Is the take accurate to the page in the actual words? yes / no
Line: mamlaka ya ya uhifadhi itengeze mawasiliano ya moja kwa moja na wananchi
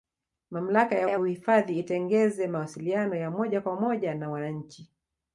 yes